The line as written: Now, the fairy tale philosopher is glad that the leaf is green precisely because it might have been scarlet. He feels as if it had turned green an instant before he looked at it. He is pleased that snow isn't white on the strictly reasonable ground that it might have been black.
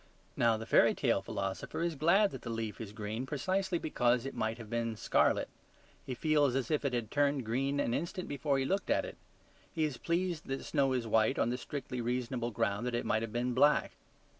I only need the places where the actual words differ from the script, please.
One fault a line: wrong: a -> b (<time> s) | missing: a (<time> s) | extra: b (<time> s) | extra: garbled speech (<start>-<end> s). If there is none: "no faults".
wrong: isn't -> is (10.9 s)